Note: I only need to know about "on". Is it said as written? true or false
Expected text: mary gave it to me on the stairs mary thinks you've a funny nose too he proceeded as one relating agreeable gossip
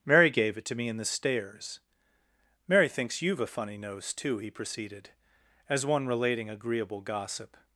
false